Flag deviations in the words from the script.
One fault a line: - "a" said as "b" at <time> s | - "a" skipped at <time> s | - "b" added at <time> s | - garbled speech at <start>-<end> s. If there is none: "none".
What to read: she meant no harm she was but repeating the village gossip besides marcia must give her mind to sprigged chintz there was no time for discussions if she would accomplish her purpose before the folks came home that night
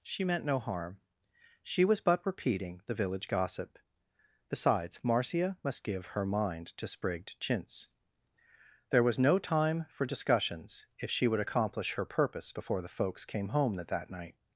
- "that" added at 13.9 s